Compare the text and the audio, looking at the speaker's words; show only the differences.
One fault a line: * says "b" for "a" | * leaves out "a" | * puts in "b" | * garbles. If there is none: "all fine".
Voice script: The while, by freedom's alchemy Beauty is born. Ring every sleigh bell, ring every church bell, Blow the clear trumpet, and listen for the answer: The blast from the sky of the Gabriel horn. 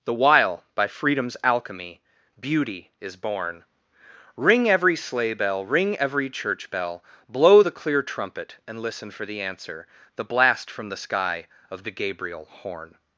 all fine